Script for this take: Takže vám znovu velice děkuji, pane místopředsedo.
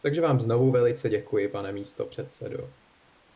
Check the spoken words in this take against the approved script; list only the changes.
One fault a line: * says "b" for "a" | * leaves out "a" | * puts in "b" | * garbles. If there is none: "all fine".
all fine